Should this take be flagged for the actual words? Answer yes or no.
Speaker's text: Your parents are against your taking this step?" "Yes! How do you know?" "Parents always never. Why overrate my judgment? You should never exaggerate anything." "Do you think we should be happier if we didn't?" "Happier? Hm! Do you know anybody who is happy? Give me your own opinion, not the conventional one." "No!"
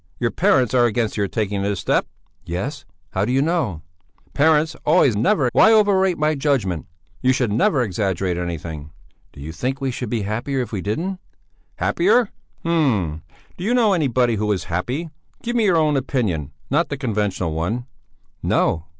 no